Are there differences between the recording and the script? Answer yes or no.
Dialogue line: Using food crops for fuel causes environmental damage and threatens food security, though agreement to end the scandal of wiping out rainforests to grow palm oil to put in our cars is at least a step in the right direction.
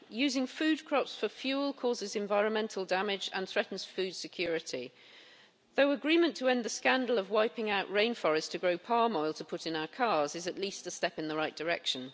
no